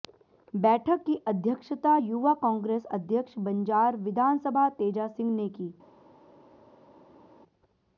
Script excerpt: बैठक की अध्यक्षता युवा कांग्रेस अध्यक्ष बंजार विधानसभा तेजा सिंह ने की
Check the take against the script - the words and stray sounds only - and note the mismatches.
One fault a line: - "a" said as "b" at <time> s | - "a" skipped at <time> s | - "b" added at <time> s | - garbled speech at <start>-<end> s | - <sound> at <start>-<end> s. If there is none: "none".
none